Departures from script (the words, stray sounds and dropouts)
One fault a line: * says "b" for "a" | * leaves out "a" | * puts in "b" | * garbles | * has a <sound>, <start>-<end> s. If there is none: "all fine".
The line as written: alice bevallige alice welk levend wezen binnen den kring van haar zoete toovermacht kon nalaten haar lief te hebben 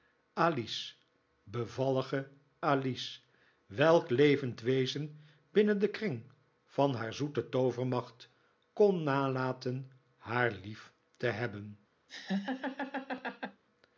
* has a laugh, 12.1-13.6 s